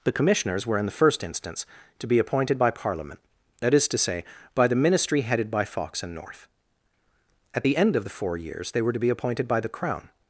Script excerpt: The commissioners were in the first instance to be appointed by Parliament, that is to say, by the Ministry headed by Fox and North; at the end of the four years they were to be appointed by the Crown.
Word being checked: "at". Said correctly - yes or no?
yes